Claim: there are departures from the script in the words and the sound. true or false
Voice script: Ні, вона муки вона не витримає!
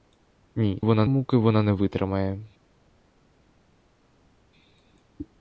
false